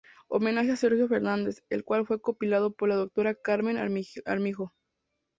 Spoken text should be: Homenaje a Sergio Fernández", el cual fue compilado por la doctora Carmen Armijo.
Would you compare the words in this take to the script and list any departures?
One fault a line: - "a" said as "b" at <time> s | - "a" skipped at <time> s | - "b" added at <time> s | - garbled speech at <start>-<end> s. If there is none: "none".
none